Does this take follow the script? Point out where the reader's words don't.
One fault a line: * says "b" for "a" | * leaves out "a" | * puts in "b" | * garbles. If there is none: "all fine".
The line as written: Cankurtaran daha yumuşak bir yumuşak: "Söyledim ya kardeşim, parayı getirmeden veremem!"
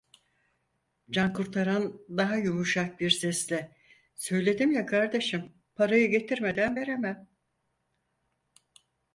* says "sesle" for "yumuşak"